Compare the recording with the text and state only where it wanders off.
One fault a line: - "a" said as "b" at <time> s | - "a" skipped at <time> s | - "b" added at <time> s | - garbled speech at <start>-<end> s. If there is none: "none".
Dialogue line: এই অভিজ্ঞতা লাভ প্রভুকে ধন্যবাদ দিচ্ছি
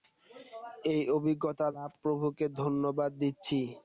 none